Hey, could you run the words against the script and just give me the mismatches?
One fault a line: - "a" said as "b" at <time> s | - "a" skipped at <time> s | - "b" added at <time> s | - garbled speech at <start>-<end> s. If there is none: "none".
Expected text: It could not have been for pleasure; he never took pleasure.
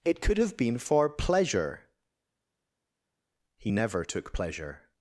- "not" skipped at 0.4 s